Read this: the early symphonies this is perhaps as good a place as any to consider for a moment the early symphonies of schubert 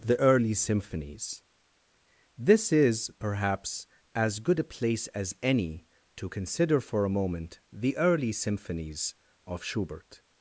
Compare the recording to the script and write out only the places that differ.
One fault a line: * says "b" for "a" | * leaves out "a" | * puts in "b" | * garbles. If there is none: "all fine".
all fine